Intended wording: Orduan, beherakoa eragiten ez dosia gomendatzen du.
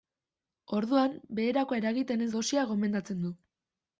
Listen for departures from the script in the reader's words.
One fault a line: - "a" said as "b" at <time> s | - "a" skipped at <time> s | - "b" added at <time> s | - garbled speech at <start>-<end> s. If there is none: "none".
none